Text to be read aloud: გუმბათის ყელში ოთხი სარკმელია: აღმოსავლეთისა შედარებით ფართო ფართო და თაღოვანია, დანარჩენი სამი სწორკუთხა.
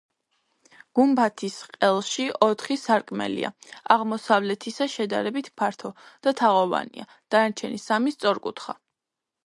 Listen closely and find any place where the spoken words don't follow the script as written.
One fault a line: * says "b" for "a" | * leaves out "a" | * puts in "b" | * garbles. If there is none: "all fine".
* leaves out "ფართო"